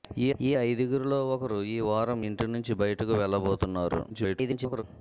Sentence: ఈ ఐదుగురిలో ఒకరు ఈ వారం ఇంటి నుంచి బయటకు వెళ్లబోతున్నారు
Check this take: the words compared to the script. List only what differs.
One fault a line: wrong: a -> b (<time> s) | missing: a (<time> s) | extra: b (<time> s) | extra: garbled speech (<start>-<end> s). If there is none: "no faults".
extra: ఈ (0.4 s)
extra: garbled speech (4.1-4.8 s)